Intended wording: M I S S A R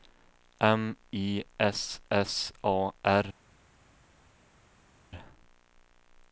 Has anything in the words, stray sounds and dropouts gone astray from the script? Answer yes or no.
no